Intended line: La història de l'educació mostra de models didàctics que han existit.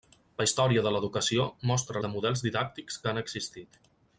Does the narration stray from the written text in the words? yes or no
no